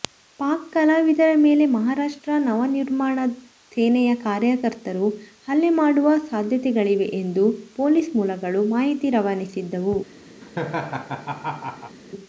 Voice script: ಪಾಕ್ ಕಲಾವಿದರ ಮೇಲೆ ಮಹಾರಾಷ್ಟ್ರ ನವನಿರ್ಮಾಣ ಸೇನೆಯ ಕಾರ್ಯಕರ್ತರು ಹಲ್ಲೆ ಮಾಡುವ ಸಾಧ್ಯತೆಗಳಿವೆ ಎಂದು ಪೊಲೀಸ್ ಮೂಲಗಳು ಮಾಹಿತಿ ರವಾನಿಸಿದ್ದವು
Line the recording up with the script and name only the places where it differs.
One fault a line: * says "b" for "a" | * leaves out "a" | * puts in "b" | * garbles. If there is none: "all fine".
all fine